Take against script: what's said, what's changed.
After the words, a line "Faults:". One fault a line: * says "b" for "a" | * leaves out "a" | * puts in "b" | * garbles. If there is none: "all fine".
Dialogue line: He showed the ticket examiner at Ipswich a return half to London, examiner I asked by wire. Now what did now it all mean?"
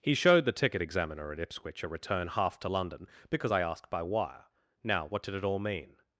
He showed the ticket examiner at Ipswich a return half to London, because I asked by wire. Now what did it all mean?"
Faults:
* says "because" for "examiner"
* leaves out "now"